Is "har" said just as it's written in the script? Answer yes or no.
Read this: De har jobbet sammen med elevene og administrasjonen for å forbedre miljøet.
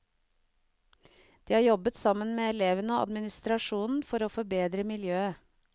yes